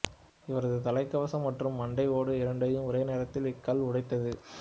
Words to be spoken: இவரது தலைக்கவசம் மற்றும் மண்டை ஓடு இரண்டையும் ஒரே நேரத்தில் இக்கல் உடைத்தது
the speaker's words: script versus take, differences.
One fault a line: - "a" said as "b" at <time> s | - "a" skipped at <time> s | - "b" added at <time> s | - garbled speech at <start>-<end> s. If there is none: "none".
none